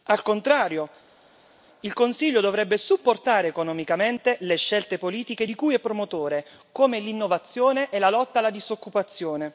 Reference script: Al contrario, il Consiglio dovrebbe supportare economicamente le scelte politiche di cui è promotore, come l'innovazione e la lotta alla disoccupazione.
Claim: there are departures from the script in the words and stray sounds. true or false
false